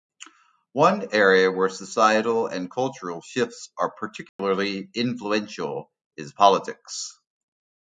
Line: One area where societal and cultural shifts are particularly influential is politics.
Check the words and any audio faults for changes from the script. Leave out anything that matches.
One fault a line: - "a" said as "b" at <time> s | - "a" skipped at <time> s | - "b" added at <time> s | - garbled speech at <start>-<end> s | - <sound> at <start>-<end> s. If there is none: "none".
- dropout at 4.3-4.4 s